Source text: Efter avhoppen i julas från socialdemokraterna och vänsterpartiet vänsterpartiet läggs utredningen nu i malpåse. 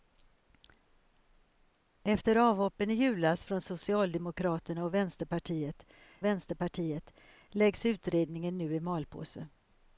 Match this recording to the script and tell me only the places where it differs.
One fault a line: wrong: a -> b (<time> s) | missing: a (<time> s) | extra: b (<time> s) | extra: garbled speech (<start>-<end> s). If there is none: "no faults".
no faults